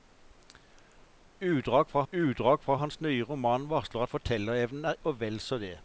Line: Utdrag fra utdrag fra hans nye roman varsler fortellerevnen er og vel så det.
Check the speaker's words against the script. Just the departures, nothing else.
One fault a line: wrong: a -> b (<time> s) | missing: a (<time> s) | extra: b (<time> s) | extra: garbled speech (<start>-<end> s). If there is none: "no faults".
no faults